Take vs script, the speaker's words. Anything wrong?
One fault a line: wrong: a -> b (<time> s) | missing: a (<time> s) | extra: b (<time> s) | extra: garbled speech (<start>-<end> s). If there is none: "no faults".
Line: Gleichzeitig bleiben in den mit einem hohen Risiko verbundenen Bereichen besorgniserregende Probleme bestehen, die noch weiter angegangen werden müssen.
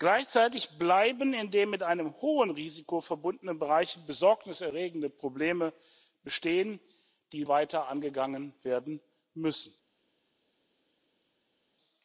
missing: noch (7.5 s)